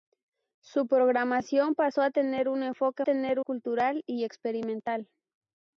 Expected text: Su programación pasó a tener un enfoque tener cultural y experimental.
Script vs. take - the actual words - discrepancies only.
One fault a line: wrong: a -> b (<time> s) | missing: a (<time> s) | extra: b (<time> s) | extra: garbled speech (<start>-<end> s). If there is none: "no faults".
no faults